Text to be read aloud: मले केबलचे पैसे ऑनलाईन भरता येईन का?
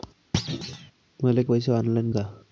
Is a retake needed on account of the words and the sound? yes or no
yes